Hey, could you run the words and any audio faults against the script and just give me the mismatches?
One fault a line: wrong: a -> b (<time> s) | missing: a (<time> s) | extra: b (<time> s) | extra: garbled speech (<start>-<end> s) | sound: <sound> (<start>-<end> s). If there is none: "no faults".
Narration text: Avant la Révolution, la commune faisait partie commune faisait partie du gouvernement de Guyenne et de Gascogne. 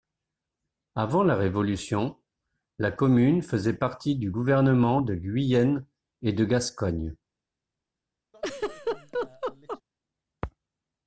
missing: commune faisait partie (4.2 s)
sound: laugh (8.3-9.8 s)